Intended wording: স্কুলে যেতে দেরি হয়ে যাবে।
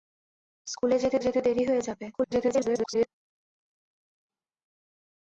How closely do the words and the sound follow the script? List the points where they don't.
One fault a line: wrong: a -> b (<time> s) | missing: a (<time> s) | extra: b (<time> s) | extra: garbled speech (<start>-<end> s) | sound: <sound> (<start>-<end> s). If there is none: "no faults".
extra: যেতে (1.2 s)
extra: garbled speech (2.1-3.1 s)